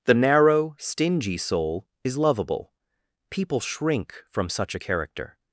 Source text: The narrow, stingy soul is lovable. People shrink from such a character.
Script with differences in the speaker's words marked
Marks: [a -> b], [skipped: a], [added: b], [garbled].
The narrow, stingy soul is lovable. People shrink from such a character.